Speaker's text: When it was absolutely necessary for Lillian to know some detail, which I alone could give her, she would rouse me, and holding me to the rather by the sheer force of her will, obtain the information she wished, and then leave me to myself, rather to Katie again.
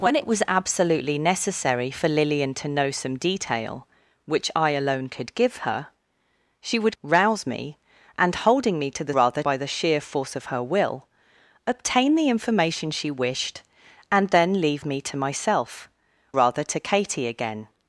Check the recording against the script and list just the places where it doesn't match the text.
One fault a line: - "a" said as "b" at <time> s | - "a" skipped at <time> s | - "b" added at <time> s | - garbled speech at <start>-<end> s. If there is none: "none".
none